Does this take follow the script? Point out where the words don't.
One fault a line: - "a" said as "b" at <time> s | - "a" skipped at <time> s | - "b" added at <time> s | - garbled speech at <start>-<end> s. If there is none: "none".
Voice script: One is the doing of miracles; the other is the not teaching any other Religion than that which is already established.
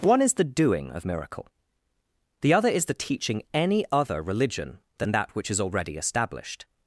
- "miracles" said as "miracle" at 1.0 s
- "not" skipped at 2.9 s